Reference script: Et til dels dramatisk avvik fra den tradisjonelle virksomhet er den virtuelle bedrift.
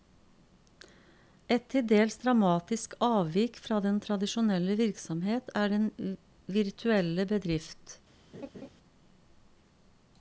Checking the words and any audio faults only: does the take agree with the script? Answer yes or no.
no